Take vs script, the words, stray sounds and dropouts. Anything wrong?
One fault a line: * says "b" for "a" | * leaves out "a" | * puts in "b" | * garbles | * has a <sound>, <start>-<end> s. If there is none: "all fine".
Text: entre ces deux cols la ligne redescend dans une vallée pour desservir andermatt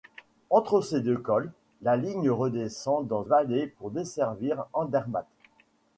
* leaves out "une"